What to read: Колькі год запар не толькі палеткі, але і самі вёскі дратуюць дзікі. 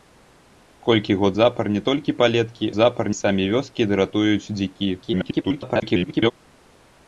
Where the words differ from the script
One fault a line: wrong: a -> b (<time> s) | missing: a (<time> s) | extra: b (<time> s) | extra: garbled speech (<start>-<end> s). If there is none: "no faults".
wrong: але -> запар (2.8 s)
extra: garbled speech (5.0-6.3 s)